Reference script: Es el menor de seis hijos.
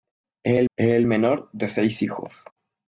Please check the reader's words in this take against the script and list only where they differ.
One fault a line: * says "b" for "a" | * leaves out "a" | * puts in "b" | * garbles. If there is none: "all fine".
* puts in "es el"